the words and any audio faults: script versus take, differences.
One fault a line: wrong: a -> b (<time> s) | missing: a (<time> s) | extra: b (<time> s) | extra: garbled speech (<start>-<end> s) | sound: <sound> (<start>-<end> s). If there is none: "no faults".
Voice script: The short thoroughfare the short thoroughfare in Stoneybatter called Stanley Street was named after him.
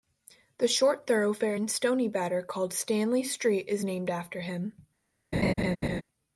missing: the short thoroughfare (1.6 s)
wrong: was -> is (3.7 s)
sound: laugh (5.3-6.0 s)